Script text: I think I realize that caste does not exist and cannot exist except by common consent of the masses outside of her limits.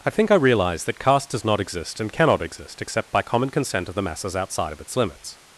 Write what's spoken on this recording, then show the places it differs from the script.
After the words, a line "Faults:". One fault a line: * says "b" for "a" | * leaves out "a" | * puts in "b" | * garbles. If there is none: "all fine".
I think I realize that caste does not exist and cannot exist except by common consent of the masses outside of its limits.
Faults:
* says "its" for "her"